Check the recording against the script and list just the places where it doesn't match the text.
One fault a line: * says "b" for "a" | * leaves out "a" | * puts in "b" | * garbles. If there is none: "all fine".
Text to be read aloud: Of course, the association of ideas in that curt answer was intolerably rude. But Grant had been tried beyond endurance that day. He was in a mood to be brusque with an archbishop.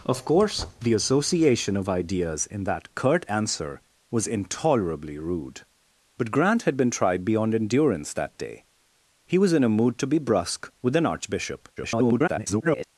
* garbles